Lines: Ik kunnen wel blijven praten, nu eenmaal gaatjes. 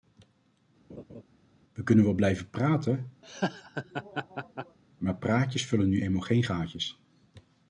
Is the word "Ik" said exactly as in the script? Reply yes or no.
no